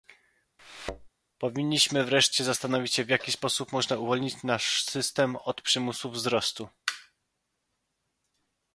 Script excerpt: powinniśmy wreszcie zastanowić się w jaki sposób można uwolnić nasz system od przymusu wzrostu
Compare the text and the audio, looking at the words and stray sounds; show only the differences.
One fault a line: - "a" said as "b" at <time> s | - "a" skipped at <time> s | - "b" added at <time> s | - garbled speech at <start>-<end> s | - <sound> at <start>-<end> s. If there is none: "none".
- thud at 0.6-1.1 s